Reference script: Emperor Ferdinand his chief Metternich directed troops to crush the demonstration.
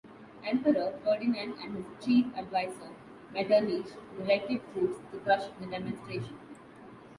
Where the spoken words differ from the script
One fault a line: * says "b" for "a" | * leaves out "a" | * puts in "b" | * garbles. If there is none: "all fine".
* puts in "and"
* puts in "advisor"